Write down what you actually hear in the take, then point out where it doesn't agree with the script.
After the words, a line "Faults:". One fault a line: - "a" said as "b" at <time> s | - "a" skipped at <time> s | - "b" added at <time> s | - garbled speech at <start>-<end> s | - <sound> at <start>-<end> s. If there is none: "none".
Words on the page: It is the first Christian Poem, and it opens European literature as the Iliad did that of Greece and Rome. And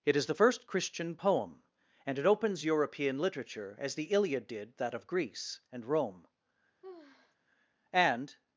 It is the first Christian Poem, and it opens European literature as the Iliad did that of Greece and Rome. And
Faults:
- sigh at 6.8-7.4 s